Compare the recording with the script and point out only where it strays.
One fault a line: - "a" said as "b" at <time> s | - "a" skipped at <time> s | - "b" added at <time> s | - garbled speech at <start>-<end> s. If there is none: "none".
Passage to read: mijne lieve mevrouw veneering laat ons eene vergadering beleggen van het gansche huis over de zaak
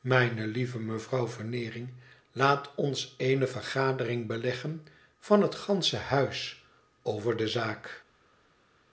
none